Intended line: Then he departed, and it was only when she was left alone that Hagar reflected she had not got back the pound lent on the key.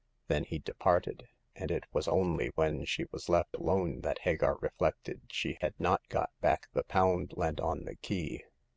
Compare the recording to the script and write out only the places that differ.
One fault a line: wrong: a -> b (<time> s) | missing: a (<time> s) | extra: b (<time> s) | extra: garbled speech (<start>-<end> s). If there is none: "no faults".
no faults